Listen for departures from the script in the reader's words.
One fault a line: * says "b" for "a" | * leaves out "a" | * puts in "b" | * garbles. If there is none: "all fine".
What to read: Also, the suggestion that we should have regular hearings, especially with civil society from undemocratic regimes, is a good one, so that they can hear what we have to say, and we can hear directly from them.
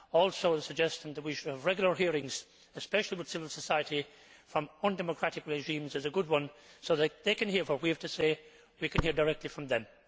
all fine